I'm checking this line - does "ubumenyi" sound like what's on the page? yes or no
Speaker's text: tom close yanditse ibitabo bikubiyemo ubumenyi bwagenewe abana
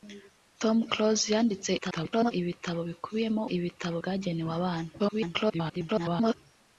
no